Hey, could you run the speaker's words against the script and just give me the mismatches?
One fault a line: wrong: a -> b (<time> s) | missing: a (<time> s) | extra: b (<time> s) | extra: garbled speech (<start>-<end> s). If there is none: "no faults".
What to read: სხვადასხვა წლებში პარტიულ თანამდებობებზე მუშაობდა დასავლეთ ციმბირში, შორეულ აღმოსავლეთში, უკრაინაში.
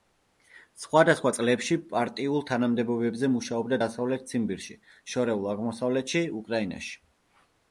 no faults